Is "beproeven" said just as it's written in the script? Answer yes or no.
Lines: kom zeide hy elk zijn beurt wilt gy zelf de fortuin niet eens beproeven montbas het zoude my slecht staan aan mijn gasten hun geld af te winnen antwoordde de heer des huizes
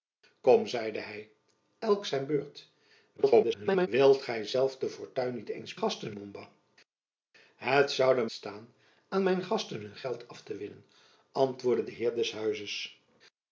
no